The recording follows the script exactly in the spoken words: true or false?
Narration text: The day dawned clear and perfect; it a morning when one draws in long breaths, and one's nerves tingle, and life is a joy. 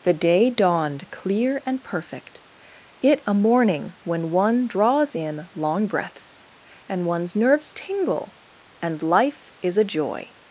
true